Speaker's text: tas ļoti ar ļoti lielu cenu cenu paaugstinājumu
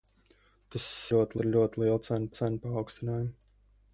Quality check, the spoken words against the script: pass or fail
pass